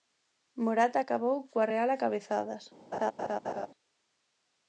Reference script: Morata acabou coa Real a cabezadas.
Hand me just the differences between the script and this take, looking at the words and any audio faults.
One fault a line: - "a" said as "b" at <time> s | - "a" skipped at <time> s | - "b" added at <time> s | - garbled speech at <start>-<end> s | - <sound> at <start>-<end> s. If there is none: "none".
- laugh at 2.9-3.7 s